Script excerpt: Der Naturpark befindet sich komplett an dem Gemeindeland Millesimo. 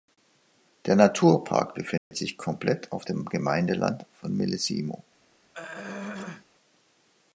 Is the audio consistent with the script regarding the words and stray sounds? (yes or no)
no